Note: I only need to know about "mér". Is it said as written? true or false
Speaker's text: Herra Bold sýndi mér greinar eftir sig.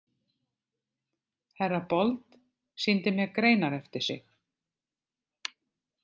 true